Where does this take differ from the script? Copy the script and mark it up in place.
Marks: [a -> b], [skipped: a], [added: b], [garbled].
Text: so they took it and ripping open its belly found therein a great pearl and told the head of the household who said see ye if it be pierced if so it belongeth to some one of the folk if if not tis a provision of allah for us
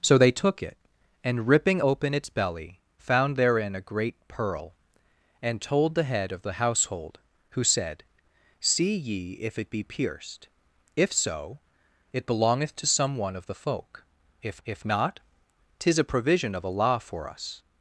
so they took it and ripping open its belly found therein a great pearl and told the head of the household who said see ye if it be pierced if so it belongeth to some one of the folk if if not tis a provision of allah for us